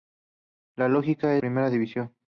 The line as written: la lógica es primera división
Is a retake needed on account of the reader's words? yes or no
no